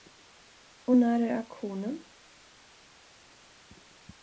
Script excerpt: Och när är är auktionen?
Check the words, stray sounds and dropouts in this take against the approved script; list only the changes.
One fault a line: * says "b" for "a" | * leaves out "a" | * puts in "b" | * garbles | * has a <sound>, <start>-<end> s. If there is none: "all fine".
* leaves out "är"